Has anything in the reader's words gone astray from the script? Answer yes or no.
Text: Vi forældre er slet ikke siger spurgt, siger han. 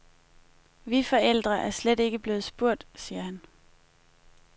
yes